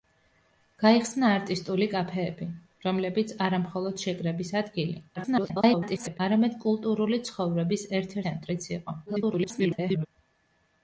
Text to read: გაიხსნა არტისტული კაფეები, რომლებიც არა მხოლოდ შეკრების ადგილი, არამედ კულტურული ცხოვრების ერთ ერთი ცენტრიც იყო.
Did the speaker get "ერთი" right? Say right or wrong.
wrong